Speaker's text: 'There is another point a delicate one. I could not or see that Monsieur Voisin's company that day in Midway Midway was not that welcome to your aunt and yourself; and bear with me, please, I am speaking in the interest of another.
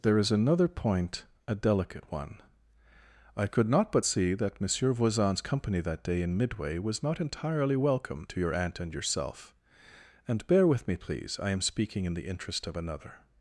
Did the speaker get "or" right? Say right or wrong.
wrong